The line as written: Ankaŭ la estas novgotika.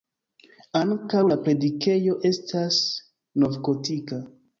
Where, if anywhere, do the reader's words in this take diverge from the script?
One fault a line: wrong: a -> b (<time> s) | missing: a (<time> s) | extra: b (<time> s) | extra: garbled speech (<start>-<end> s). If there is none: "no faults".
extra: predikejo (1.4 s)